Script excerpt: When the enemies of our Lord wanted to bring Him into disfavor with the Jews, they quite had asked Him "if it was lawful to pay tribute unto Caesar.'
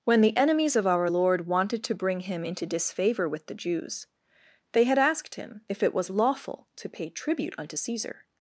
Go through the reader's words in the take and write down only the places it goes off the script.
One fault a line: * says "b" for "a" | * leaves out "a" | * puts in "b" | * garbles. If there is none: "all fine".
* leaves out "quite"